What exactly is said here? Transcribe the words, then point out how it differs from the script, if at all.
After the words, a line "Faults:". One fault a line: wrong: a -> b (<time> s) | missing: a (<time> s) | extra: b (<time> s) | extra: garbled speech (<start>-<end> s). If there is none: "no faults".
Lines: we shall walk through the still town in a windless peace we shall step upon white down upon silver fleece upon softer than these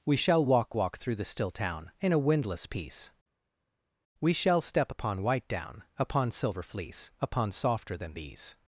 we shall walk walk through the still town in a windless peace we shall step upon white down upon silver fleece upon softer than these
Faults:
extra: walk (0.7 s)